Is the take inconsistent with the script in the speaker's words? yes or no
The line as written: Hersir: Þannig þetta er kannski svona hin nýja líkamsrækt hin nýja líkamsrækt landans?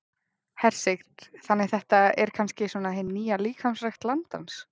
yes